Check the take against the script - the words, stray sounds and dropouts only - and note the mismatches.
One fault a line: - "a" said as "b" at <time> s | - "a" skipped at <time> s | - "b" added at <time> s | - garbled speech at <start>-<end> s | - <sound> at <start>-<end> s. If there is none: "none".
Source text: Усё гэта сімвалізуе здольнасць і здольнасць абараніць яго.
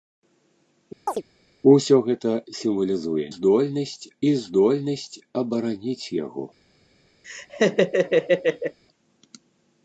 - chirp at 1.1-1.2 s
- laugh at 7.2-8.8 s